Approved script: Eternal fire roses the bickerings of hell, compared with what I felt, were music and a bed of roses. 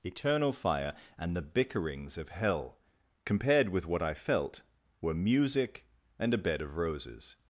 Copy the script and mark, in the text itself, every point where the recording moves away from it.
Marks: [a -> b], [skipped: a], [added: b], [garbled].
Eternal fire [roses -> and] the bickerings of hell, compared with what I felt, were music and a bed of roses.